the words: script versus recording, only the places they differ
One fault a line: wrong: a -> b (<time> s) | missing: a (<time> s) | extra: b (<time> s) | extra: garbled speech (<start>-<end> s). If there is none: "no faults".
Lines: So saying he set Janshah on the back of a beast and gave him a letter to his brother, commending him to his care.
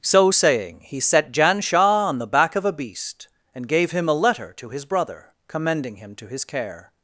no faults